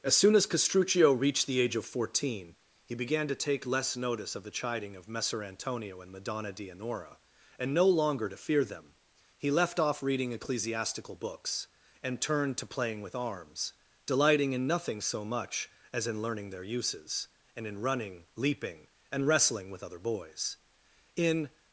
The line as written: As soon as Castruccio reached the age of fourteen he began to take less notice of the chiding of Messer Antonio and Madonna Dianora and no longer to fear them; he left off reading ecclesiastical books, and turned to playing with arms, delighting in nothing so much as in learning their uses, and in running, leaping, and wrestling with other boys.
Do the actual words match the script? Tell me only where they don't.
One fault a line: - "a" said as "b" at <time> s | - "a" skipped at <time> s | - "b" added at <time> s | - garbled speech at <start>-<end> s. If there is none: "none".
- "In" added at 21.1 s